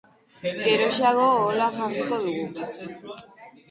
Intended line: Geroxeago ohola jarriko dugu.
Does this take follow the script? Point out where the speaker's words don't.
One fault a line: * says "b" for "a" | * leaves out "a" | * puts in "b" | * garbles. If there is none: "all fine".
all fine